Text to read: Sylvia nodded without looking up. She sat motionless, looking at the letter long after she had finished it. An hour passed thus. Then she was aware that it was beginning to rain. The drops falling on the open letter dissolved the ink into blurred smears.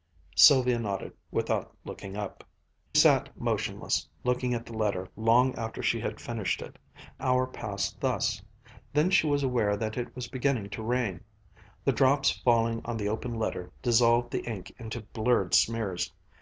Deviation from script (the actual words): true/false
true